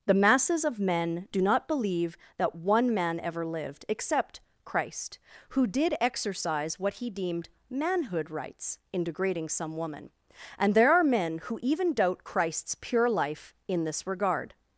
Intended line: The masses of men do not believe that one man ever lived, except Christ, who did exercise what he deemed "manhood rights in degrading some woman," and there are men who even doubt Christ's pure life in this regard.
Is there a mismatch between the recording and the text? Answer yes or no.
no